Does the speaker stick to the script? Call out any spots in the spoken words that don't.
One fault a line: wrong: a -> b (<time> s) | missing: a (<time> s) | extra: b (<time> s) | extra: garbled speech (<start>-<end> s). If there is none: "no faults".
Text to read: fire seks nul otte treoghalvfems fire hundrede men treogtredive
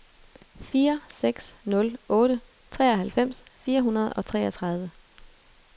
wrong: men -> og (4.1 s)